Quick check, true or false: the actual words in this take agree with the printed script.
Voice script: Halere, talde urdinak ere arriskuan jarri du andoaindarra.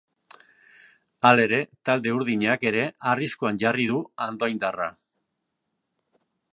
true